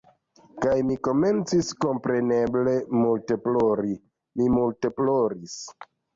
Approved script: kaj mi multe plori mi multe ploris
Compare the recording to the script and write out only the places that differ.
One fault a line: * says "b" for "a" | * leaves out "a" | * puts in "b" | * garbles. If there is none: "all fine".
* puts in "komencis kompreneble"